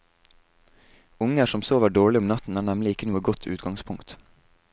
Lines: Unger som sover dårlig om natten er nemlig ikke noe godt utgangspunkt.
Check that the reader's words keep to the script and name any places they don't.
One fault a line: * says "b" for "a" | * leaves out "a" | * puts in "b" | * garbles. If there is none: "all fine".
all fine